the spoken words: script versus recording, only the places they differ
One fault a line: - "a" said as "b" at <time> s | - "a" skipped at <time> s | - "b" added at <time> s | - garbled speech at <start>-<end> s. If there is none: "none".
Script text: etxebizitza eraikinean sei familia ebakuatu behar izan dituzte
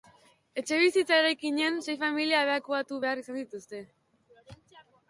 none